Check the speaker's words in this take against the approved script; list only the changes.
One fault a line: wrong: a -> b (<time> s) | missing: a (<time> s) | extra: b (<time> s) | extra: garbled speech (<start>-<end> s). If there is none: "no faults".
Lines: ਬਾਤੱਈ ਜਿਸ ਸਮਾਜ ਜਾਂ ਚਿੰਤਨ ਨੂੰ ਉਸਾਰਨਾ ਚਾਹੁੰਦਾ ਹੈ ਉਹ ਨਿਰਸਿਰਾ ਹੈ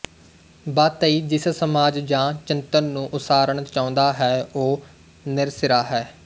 no faults